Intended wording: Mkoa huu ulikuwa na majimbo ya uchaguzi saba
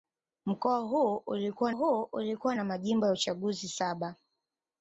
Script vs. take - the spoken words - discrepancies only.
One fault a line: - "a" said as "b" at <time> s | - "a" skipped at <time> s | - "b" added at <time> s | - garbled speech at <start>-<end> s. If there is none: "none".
- "huu ulikuwa" added at 1.7 s